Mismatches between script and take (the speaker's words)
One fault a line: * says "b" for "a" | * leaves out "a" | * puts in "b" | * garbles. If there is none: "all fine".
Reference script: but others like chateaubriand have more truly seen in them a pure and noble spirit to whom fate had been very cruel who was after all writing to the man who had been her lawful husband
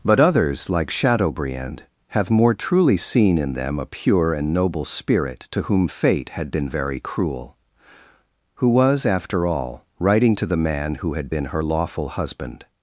all fine